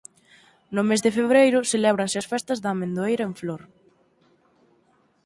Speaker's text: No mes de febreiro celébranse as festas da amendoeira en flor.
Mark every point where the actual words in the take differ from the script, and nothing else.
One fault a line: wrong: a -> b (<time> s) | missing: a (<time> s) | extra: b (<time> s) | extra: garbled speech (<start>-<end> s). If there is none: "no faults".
no faults